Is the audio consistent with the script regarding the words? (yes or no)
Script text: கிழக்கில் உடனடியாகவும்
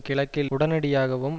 yes